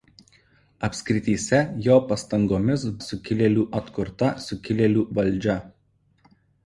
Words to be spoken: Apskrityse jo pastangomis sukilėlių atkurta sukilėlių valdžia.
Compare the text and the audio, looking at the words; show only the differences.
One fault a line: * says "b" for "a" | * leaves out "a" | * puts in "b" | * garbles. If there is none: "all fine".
all fine